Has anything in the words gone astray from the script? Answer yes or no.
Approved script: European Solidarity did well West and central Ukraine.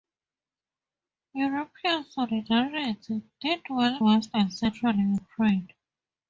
no